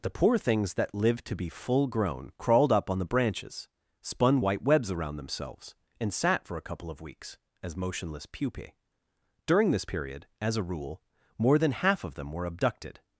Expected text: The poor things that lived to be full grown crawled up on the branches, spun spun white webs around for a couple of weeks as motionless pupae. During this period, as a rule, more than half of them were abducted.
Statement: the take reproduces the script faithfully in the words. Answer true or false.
false